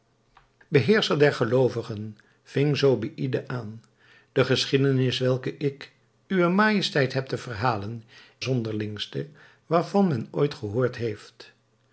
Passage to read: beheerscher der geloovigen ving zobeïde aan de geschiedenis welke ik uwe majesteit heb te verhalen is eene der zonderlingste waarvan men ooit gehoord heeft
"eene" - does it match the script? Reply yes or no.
no